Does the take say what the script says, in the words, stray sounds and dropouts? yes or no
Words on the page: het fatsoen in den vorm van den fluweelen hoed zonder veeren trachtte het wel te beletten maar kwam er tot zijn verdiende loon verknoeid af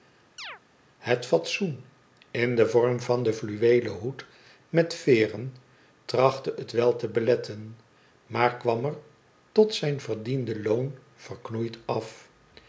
no